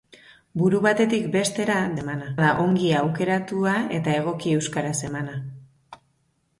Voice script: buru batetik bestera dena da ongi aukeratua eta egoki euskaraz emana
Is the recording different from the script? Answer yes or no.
yes